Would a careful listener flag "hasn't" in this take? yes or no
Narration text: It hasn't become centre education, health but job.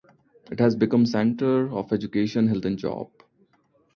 yes